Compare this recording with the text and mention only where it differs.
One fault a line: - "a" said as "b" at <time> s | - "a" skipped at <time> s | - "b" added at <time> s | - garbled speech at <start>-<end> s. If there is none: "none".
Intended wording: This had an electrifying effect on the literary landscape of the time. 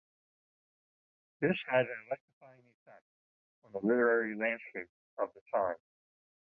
none